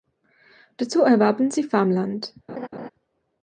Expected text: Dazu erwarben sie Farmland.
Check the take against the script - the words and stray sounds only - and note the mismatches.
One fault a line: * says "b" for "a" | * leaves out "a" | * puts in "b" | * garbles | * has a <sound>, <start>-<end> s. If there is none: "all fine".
* has a laugh, 2.5-2.9 s